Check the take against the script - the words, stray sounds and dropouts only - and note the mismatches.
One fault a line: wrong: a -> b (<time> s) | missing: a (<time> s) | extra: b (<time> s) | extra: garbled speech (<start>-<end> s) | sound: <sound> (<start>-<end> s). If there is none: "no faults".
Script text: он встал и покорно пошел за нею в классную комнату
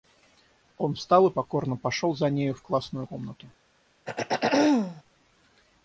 sound: throat clearing (4.1-5.0 s)